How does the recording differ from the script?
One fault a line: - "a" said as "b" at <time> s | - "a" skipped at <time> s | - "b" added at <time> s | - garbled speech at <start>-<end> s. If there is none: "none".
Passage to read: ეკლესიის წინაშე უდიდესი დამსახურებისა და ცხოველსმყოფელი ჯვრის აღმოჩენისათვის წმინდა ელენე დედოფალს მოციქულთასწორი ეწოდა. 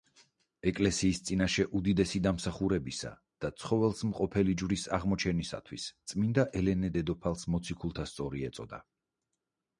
none